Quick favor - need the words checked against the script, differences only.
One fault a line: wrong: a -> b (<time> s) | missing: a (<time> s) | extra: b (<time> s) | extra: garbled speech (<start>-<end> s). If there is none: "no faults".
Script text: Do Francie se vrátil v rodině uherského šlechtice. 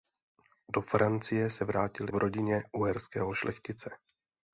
no faults